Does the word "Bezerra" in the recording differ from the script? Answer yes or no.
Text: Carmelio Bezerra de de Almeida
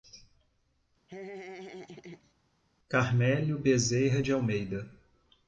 no